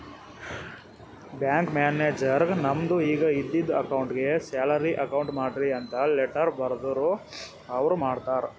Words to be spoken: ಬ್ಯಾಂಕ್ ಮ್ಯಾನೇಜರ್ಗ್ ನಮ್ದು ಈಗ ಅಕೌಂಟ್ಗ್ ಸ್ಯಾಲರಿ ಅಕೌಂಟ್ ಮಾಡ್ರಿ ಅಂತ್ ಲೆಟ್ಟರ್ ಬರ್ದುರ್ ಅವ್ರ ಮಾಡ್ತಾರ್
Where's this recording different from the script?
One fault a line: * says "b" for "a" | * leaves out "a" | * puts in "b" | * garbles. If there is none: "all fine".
* puts in "ಇದ್ದಿದು"